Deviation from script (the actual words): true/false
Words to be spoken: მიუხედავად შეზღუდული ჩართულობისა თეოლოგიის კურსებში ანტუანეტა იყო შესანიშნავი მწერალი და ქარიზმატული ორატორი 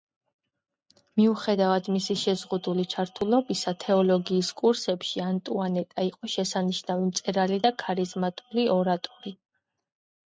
true